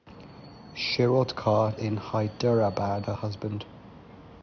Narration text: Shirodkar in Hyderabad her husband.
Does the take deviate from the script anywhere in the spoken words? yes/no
no